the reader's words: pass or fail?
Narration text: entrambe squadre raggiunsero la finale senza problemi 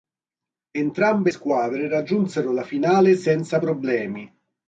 pass